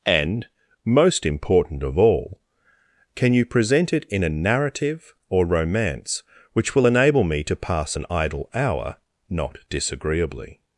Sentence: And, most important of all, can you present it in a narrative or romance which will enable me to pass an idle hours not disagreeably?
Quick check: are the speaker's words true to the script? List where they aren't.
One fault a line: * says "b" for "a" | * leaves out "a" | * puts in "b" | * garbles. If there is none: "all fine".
* says "hour" for "hours"